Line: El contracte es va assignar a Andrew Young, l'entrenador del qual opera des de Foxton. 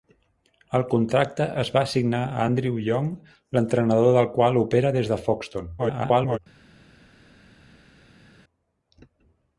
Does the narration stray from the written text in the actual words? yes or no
yes